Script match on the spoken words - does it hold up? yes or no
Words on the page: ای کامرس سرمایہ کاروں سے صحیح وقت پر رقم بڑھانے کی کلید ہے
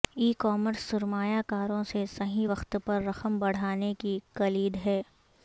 yes